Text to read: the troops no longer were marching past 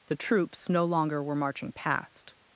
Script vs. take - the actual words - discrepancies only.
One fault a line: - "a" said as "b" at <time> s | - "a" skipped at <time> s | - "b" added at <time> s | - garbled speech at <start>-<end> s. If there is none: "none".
none